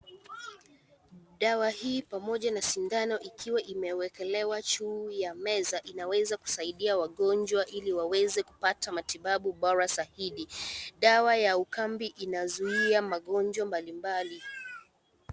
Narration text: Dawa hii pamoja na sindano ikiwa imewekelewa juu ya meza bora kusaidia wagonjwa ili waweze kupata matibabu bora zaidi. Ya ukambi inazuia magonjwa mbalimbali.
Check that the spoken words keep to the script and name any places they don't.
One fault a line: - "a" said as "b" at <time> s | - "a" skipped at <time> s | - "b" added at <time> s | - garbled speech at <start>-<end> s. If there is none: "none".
- "bora" said as "inaweza" at 5.8 s
- "Dawa" added at 11.0 s